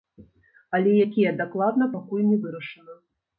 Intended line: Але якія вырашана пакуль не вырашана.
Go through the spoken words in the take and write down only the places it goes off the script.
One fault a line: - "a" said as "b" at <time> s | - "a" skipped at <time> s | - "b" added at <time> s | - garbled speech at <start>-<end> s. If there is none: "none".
- "вырашана" said as "дакладна" at 1.4 s